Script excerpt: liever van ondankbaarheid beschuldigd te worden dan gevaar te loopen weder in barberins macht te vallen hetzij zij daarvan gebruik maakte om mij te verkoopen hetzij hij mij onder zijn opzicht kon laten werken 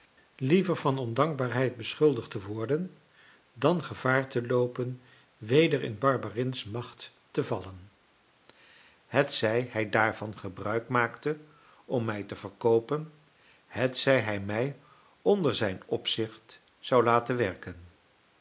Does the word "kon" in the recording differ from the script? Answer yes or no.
yes